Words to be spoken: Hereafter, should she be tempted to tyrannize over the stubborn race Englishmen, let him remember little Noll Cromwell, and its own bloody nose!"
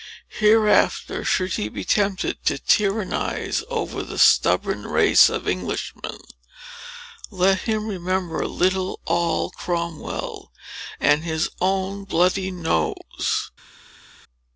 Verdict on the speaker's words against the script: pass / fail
fail